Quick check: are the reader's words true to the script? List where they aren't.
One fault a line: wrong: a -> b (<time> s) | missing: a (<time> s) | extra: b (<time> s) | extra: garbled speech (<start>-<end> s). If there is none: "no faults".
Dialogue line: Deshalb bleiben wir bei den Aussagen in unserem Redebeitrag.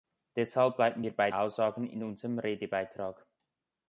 missing: den (1.3 s)